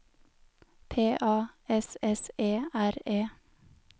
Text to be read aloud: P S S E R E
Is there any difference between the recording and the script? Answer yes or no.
yes